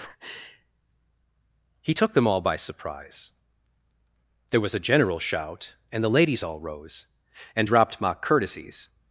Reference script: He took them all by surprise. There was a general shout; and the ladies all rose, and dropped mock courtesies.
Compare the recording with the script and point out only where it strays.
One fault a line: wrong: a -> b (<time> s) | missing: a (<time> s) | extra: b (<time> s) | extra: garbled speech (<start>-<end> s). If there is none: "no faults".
no faults